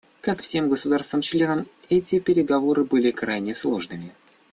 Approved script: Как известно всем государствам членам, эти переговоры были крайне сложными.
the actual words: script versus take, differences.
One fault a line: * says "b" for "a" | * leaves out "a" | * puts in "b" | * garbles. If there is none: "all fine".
* leaves out "известно"